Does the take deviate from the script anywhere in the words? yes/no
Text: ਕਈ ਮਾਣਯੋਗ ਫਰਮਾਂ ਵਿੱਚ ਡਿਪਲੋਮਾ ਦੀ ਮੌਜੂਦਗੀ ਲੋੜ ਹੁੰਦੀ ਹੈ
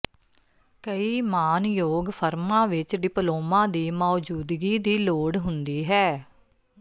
yes